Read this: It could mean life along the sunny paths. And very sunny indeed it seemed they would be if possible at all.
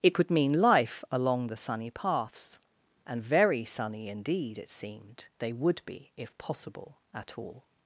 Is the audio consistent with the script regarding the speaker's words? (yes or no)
yes